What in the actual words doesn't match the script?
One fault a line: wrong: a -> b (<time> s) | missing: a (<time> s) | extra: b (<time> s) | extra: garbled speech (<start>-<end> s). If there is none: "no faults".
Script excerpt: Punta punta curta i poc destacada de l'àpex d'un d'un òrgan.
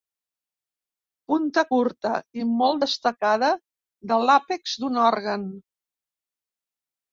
missing: punta (1.6 s)
wrong: poc -> molt (2.6 s)
missing: d'un (5.0 s)